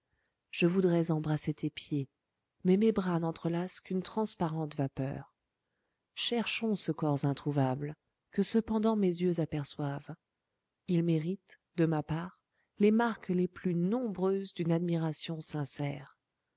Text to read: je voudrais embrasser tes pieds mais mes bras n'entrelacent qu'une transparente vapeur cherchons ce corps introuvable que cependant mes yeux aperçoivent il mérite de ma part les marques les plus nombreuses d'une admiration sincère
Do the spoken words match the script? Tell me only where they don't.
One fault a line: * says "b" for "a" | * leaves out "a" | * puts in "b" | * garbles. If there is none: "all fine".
all fine